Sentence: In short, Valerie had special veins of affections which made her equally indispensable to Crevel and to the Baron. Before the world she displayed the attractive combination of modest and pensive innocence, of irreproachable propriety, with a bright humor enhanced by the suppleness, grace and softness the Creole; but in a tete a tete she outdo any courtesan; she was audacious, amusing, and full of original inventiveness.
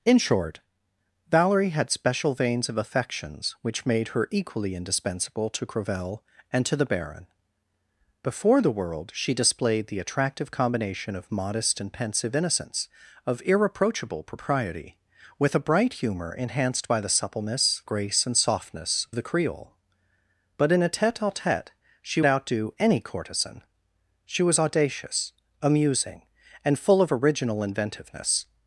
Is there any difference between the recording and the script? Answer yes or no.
no